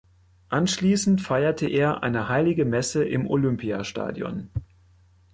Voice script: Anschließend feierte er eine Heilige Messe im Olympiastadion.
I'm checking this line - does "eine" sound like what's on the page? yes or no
yes